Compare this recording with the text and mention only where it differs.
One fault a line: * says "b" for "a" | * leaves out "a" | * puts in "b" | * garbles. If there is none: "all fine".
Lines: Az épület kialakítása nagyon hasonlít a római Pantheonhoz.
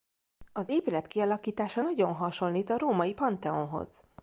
all fine